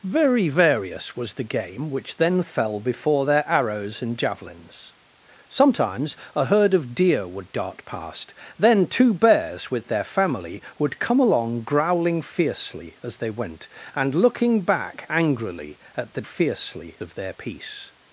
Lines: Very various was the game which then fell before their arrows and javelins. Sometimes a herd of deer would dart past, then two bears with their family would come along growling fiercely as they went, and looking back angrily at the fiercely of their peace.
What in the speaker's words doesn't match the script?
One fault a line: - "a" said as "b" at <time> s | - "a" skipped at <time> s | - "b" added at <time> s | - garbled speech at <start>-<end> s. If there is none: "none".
none